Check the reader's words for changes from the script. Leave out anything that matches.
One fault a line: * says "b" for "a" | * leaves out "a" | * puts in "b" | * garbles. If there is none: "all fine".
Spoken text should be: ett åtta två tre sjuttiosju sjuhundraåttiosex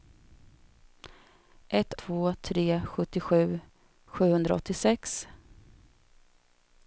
* leaves out "åtta"